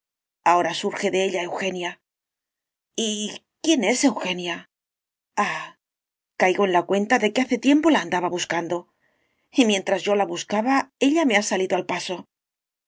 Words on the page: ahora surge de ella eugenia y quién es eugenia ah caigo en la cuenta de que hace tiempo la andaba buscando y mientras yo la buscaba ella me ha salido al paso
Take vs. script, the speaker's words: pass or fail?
pass